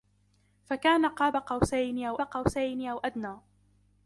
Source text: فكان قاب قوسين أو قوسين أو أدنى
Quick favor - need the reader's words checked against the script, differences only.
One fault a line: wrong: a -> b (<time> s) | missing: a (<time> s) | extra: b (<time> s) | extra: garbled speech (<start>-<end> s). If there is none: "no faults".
no faults